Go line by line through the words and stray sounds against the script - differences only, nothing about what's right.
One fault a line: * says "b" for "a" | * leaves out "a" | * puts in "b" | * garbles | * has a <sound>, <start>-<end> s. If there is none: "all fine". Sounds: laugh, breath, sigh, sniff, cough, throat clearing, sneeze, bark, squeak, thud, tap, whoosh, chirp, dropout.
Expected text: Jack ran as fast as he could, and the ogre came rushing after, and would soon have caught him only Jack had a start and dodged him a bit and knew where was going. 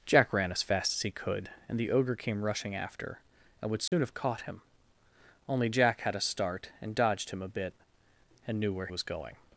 * has a dropout, 3.9-3.9 s